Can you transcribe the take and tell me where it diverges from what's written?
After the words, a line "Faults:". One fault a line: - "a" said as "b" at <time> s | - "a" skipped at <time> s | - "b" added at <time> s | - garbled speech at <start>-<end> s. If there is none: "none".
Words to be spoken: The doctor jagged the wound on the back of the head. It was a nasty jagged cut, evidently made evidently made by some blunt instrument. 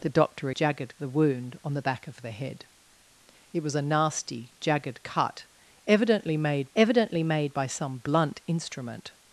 The doctor jagged the wound on the back of the head. It was a nasty jagged cut, evidently made evidently made by some blunt instrument.
Faults:
none